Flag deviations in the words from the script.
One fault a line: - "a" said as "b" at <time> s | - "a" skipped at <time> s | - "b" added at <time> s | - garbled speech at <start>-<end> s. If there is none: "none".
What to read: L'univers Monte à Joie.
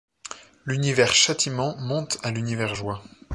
- "Châtiment" added at 1.1 s
- "l'univers" added at 2.3 s